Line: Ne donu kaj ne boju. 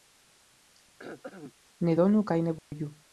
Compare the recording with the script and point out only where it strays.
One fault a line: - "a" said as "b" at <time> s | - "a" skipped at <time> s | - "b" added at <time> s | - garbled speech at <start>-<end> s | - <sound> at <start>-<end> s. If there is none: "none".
- throat clearing at 1.0-1.5 s
- dropout at 2.6-2.7 s